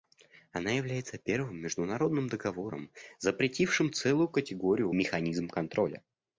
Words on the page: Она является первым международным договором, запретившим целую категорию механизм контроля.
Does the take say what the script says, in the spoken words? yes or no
yes